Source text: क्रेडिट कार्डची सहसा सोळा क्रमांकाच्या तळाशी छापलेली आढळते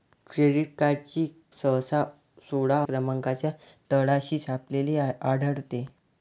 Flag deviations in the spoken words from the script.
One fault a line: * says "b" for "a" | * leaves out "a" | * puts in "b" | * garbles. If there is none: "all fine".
all fine